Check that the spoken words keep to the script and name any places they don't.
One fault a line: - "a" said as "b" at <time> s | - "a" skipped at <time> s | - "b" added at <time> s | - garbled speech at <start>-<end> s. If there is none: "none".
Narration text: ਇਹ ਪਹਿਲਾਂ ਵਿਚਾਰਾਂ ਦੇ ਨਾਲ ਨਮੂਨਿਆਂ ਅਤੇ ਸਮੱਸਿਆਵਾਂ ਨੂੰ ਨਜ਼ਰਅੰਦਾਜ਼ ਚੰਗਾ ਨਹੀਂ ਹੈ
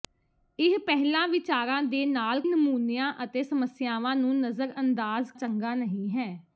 none